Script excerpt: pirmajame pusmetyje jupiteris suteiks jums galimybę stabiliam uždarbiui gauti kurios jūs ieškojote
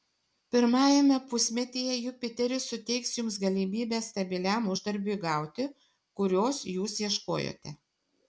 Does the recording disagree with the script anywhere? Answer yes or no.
no